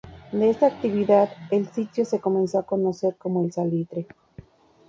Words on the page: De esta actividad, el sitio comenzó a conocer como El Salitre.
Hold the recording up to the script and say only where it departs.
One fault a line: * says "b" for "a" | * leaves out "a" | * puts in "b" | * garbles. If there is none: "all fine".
* puts in "se"